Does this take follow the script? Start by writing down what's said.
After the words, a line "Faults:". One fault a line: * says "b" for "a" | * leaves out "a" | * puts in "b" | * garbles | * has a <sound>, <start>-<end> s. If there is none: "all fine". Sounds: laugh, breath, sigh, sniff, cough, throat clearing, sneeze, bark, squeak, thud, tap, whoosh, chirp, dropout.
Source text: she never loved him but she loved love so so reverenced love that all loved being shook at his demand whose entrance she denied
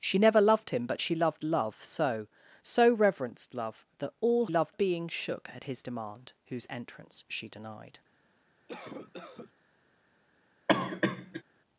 she never loved him but she loved love so so reverenced love that all loved being shook at his demand whose entrance she denied
Faults:
* has a cough, 8.7-9.5 s
* has a cough, 10.7-11.4 s